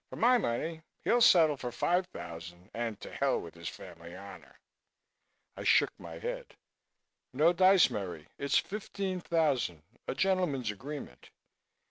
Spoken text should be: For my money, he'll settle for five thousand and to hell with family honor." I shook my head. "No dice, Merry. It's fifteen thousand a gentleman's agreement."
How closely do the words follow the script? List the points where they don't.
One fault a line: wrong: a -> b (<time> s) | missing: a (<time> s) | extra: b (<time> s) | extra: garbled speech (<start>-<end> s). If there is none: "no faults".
extra: his (3.5 s)